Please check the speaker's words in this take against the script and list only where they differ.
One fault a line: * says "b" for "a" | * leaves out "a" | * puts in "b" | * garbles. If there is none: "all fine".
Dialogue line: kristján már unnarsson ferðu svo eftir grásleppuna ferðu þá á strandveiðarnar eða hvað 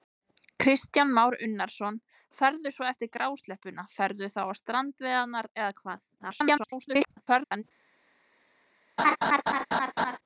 * garbles